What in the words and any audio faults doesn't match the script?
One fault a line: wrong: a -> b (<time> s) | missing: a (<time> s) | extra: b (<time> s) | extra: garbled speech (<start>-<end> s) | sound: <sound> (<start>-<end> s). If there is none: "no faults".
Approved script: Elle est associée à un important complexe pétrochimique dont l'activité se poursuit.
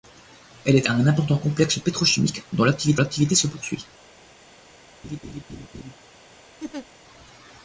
missing: associée (0.9 s)
extra: l'activité (3.0 s)
sound: laugh (5.0-5.9 s)
sound: laugh (6.6-6.9 s)